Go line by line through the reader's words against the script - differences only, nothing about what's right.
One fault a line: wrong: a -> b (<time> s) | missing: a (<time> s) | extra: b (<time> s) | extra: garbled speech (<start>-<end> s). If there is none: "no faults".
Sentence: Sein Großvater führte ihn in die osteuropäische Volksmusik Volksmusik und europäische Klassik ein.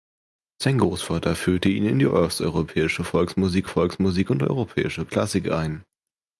no faults